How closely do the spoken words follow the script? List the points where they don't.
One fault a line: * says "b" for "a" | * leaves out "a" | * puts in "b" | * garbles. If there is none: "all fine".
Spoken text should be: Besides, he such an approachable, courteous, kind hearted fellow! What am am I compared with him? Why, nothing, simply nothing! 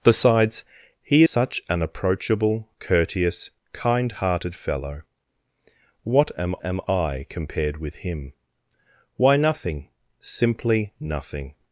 all fine